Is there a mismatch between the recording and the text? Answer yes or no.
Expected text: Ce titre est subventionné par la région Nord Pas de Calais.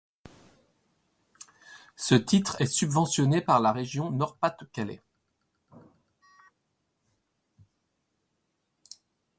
no